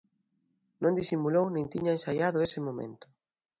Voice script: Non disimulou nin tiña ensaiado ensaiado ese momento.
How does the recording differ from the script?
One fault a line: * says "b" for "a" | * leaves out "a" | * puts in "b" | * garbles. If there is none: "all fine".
* leaves out "ensaiado"